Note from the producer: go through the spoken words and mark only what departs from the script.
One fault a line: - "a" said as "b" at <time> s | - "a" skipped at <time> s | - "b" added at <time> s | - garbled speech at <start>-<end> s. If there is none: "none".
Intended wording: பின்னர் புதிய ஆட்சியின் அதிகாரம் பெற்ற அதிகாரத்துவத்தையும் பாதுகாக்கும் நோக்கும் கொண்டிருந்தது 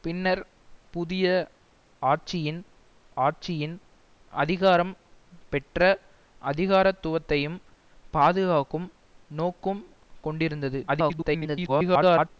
- "ஆட்சியின்" added at 3.2 s
- garbled speech at 10.9-12.3 s